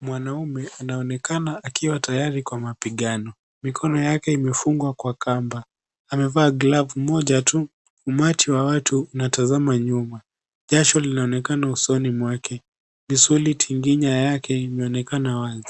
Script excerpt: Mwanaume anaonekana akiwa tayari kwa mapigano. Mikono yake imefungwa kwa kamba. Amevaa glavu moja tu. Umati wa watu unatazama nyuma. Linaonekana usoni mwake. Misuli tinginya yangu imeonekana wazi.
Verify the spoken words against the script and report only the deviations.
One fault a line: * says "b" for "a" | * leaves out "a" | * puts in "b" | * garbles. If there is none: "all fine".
* puts in "Jasho"
* says "yake" for "yangu"